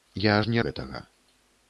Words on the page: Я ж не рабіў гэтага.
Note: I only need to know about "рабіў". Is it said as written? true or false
false